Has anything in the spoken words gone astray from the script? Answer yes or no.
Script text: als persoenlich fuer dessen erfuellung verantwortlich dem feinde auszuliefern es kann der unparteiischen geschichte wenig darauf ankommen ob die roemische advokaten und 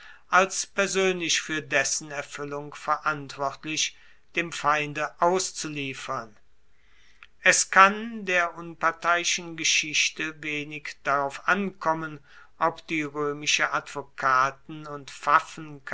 no